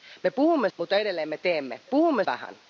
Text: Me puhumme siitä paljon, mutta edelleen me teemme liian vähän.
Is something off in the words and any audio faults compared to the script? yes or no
yes